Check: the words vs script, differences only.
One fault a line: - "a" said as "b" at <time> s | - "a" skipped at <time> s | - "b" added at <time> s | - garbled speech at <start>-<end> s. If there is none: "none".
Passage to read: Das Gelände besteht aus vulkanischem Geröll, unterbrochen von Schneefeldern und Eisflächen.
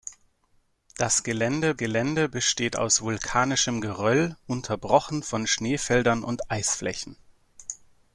- "Gelände" added at 1.7 s